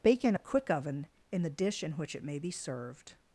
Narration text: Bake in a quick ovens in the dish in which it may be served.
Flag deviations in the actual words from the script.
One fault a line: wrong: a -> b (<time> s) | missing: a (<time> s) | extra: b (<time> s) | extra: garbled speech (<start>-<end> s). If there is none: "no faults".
wrong: ovens -> oven (0.7 s)